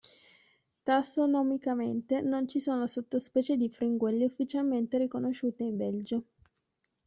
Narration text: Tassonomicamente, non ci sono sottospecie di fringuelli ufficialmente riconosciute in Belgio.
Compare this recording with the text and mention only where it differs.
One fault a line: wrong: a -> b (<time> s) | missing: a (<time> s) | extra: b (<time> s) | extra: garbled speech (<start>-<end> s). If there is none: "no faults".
no faults